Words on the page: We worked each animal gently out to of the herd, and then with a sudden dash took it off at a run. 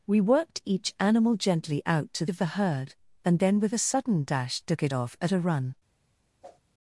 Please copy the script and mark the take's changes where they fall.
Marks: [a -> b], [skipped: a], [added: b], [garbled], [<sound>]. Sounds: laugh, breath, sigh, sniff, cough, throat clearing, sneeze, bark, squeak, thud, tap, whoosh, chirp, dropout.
We worked each animal gently out to of the herd, and then with a sudden dash took it off at a run. [whoosh]